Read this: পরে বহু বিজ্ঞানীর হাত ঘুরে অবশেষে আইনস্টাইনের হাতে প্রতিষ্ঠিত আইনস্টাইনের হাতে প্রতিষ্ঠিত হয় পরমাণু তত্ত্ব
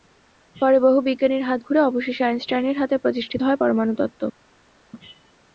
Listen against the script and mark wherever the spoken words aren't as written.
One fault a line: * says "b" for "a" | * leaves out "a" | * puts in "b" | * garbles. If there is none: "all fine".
* leaves out "আইনস্টাইনের হাতে প্রতিষ্ঠিত"